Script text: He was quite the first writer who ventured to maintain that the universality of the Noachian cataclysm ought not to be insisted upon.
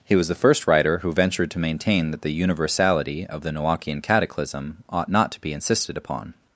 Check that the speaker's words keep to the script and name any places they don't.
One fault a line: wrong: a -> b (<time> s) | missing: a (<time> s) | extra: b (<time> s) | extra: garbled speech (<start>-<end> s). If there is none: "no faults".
missing: quite (0.3 s)